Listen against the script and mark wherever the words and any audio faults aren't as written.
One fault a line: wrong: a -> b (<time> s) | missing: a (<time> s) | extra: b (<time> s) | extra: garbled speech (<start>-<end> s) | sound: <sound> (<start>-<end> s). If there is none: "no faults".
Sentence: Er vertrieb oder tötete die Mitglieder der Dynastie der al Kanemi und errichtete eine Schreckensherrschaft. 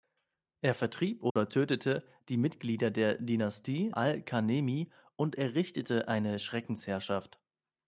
sound: dropout (1.3-1.4 s)
missing: der (3.9 s)